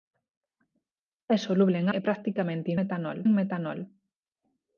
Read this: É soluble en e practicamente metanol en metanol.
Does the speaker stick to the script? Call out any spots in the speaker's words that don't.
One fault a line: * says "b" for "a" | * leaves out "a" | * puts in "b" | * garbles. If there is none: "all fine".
all fine